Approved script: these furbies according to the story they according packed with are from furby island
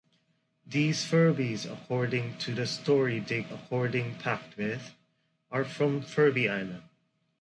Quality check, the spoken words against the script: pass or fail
pass